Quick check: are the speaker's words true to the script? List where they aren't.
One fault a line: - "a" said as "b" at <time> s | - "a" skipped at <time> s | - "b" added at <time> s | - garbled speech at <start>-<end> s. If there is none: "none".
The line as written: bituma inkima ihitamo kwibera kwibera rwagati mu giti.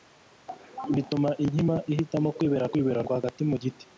none